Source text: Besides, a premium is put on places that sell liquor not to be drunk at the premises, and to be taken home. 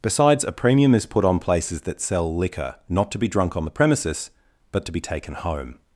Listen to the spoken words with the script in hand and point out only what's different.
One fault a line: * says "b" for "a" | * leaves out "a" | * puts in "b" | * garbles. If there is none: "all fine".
* says "on" for "at"
* says "but" for "and"